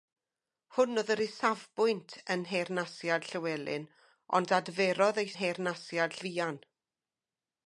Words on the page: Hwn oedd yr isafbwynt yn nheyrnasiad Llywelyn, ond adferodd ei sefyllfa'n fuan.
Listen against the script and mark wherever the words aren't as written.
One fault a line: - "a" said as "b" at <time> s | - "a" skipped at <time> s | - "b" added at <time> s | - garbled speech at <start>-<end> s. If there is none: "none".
- "sefyllfa'n" said as "nheyrnasiad" at 5.4 s